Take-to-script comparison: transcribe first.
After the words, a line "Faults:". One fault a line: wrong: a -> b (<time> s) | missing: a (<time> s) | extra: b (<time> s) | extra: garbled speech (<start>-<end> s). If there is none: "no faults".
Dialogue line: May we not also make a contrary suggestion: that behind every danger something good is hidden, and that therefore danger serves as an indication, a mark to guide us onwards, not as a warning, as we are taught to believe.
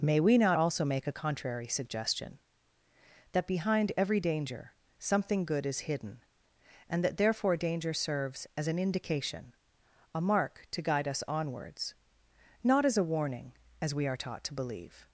May we not also make a contrary suggestion: that behind every danger something good is hidden, and that therefore danger serves as an indication, a mark to guide us onwards, not as a warning, as we are taught to believe.
Faults:
no faults